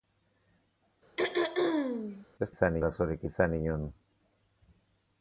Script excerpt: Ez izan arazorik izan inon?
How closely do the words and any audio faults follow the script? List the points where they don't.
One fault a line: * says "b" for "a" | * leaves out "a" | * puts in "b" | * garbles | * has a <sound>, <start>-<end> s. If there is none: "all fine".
* has a throat clearing, 1.2-2.3 s